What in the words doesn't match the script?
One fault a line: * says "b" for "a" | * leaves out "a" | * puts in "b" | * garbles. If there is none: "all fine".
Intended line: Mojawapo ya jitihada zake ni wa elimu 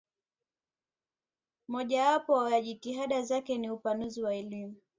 * puts in "upanuzi"